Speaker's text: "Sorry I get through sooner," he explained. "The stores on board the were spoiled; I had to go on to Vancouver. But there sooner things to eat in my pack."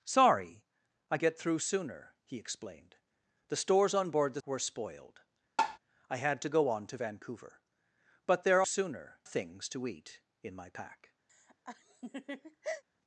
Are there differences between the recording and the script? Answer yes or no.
no